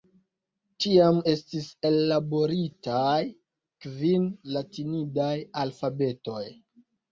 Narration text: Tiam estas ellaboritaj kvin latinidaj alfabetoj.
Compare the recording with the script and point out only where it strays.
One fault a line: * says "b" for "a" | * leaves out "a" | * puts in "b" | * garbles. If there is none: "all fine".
* says "estis" for "estas"